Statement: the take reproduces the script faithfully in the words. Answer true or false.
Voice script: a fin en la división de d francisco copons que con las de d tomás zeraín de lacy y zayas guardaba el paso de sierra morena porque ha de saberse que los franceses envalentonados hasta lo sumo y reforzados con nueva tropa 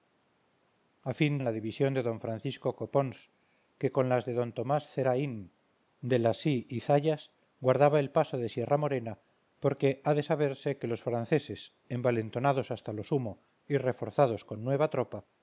true